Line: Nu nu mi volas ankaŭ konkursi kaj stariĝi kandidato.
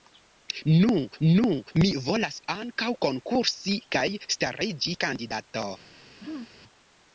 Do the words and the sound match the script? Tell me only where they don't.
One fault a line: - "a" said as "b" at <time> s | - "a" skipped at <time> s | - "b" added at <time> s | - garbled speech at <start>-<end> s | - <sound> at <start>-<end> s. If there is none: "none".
- throat clearing at 6.2-6.5 s